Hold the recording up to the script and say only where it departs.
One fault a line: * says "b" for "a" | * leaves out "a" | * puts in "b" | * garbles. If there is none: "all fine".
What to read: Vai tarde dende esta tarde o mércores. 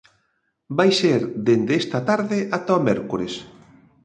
* says "ser" for "tarde"
* puts in "ata"